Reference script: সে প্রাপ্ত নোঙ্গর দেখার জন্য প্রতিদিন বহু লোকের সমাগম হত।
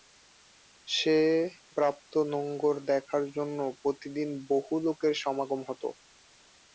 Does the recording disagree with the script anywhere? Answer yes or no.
no